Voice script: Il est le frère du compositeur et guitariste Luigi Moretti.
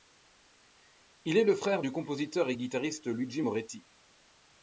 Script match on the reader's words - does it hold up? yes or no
yes